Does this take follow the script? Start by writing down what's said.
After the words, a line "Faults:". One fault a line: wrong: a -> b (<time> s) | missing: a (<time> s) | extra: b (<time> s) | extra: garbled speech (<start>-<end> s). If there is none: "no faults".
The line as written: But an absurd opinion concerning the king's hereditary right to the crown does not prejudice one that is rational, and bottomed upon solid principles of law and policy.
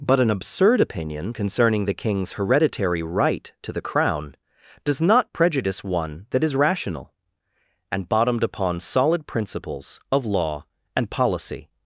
But an absurd opinion concerning the king's hereditary right to the crown does not prejudice one that is rational, and bottomed upon solid principles of law and policy.
Faults:
no faults